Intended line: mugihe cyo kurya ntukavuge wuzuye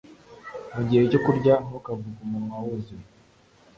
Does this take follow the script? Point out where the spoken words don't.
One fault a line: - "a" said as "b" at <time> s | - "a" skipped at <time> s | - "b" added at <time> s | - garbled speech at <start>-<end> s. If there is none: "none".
- "umunwa" added at 2.3 s